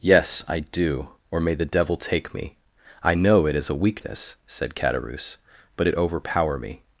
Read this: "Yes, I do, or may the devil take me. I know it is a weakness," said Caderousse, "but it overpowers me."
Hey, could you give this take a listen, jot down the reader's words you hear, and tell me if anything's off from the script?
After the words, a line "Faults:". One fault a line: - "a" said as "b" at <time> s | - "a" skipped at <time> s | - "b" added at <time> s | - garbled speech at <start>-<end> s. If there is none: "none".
"Yes, I do, or may the devil take me. I know it is a weakness," said Caderousse, "but it overpower me."
Faults:
- "overpowers" said as "overpower" at 6.0 s